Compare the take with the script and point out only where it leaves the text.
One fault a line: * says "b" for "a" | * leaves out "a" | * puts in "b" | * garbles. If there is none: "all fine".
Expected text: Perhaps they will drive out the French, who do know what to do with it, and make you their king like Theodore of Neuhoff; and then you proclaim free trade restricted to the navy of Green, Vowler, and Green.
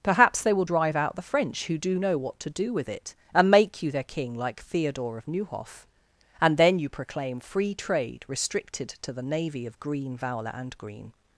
all fine